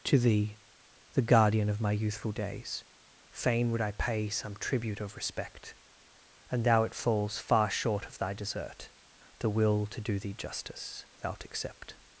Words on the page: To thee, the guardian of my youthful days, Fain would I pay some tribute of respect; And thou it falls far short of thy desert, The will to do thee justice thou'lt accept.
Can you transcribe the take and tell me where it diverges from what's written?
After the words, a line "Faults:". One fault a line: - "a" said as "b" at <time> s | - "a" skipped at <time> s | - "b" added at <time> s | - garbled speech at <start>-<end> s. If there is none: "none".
To thee, the guardian of my youthful days, Fain would I pay some tribute of respect; And thou it falls far short of thy desert, The will to do thee justice thou'lt accept.
Faults:
none